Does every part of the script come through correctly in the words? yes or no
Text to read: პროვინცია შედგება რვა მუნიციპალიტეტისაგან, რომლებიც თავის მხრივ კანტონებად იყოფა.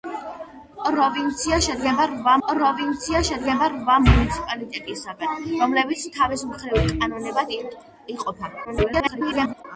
no